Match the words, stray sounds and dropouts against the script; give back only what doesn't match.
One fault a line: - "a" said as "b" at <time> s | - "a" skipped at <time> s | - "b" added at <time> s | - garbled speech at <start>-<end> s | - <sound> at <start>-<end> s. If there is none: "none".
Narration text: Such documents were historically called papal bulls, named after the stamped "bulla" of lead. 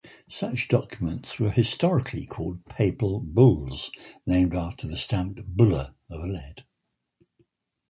none